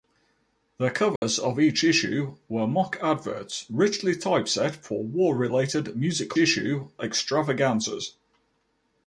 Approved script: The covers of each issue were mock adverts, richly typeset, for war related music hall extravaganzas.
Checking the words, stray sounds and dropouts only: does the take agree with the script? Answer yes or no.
no